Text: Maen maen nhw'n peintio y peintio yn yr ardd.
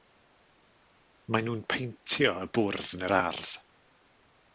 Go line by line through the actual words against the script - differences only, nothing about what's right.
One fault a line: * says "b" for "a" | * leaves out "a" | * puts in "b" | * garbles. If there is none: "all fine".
* leaves out "maen"
* says "bwrdd" for "peintio"